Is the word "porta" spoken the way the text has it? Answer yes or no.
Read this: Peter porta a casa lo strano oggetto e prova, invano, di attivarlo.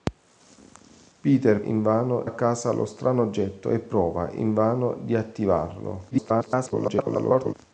no